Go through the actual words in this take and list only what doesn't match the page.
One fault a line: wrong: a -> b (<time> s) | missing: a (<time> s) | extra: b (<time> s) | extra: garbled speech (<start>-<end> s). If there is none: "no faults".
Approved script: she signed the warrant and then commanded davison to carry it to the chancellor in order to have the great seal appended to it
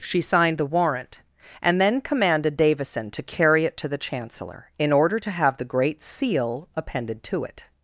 no faults